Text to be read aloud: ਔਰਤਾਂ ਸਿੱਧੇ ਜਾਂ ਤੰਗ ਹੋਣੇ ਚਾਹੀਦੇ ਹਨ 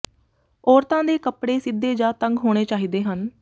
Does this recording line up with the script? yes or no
no